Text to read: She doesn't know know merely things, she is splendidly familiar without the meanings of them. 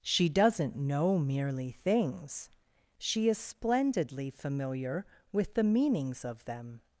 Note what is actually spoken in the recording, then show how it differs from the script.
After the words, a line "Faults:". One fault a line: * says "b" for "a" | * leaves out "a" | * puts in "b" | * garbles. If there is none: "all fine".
She doesn't know merely things, she is splendidly familiar with the meanings of them.
Faults:
* leaves out "know"
* says "with" for "without"